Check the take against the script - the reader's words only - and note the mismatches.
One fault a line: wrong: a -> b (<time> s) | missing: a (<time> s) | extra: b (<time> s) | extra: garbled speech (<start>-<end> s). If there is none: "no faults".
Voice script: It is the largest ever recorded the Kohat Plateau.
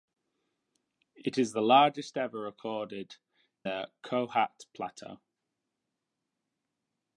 no faults